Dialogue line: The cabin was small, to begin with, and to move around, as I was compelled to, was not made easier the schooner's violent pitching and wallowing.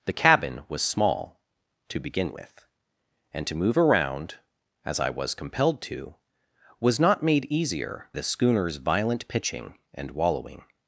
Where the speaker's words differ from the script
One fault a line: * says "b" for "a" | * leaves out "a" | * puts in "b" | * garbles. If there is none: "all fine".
all fine